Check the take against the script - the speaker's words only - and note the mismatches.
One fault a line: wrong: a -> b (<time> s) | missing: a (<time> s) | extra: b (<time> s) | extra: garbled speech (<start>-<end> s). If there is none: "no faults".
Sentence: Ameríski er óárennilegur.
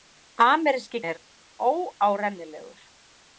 no faults